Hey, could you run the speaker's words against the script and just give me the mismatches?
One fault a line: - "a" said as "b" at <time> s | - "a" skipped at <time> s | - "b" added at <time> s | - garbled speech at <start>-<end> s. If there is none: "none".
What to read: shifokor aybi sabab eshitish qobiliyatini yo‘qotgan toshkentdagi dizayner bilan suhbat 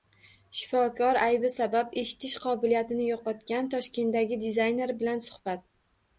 none